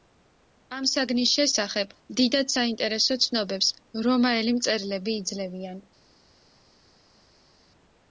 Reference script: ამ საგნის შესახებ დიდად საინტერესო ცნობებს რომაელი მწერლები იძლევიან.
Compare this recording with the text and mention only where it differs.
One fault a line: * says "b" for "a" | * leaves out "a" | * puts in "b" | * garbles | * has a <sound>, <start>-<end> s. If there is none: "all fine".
all fine